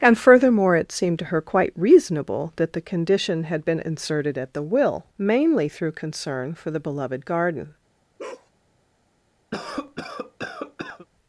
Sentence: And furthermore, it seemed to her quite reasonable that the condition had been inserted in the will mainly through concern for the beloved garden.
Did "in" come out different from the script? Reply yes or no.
yes